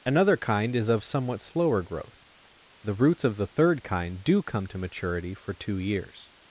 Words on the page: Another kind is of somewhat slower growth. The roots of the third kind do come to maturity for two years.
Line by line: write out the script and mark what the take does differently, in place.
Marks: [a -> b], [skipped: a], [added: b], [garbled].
Another kind is of somewhat slower growth. The roots of the third kind do come to maturity for two years.